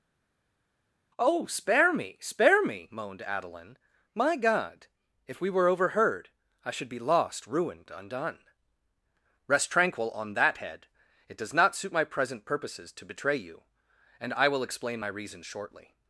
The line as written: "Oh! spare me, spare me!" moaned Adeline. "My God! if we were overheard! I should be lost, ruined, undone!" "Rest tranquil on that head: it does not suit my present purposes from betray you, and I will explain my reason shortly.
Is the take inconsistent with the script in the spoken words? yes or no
yes